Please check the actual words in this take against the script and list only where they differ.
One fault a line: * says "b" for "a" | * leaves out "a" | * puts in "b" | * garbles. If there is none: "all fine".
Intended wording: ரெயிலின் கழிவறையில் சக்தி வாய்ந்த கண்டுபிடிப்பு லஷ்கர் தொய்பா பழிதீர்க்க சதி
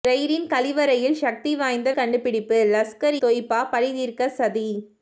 all fine